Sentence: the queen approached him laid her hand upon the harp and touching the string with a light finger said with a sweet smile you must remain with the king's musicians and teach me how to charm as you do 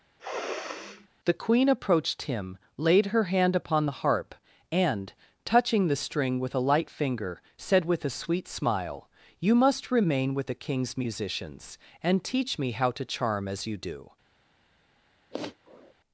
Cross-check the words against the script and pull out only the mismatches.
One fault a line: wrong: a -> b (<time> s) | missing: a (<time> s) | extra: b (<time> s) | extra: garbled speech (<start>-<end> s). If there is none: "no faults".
no faults